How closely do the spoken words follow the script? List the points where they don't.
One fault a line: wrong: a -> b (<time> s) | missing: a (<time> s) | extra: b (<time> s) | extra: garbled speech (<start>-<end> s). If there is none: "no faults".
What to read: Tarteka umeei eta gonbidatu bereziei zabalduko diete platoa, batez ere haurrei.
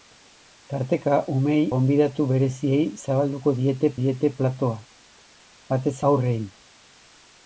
missing: eta (1.7 s)
extra: diete (4.0 s)
missing: ere (6.0 s)